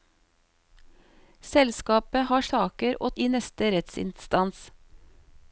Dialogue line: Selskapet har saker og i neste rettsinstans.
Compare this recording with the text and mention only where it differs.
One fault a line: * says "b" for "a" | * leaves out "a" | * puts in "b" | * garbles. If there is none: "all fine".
all fine